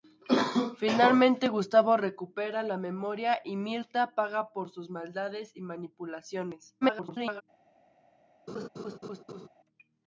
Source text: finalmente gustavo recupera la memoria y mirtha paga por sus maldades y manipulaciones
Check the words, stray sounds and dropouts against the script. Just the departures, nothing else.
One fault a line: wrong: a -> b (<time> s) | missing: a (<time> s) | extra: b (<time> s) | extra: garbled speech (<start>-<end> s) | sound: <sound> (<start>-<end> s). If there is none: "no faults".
extra: garbled speech (6.8-7.4 s)
sound: laugh (8.5-9.5 s)